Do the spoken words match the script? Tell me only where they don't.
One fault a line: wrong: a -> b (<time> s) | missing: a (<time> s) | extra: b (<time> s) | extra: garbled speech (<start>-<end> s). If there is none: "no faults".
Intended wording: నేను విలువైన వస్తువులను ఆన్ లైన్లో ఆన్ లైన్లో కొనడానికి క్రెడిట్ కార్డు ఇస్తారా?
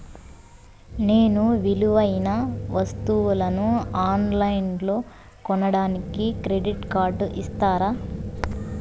missing: ఆన్ లైన్లో (5.0 s)